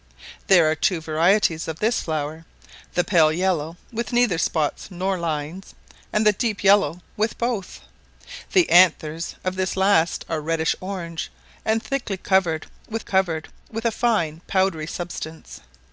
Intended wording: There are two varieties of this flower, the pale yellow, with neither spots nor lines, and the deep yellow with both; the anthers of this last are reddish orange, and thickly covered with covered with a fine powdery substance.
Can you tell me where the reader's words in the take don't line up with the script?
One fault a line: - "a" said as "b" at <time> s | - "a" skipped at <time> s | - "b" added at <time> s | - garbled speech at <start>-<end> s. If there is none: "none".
none